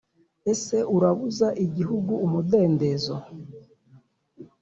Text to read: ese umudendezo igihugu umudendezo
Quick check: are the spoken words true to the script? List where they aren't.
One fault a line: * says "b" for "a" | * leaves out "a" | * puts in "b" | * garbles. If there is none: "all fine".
* says "urabuza" for "umudendezo"